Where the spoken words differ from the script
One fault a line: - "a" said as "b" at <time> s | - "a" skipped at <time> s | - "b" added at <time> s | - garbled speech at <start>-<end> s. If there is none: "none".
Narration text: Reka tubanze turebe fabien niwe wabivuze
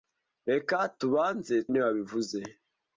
- "turebe fabien" skipped at 1.6 s